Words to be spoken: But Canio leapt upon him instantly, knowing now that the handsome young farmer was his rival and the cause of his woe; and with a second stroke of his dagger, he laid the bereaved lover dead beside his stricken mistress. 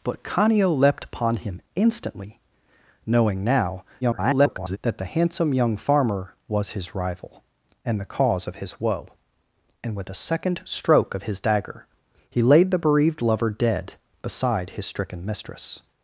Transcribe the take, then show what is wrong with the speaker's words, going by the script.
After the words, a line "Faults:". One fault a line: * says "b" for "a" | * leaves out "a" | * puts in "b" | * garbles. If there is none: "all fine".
But Canio leapt upon him instantly, knowing now [garbled] that the handsome young farmer was his rival and the cause of his woe; and with a second stroke of his dagger, he laid the bereaved lover dead beside his stricken mistress.
Faults:
* garbles